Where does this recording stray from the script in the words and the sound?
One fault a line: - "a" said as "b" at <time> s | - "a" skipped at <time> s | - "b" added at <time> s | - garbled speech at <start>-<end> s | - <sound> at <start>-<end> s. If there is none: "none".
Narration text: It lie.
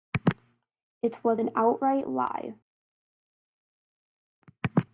- "was an outright" added at 1.2 s